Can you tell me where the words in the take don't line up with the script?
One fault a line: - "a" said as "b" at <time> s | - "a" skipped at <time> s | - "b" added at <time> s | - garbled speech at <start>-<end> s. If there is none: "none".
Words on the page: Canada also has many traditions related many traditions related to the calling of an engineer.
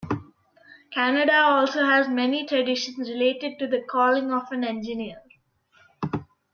- "many traditions related" skipped at 3.6 s